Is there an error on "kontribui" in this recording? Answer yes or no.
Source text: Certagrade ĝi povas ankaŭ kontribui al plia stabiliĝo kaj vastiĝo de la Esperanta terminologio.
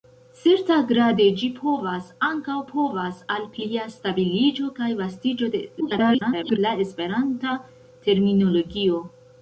yes